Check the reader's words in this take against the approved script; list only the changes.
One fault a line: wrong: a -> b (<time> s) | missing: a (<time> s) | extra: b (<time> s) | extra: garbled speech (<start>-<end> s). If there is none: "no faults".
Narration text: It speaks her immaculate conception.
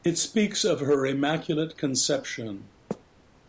extra: of (0.7 s)